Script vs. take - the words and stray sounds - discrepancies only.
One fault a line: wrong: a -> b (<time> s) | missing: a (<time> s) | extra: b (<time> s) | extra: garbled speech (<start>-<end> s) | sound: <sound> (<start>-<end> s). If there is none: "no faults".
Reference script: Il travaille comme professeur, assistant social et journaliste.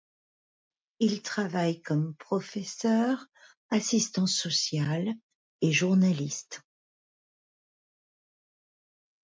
no faults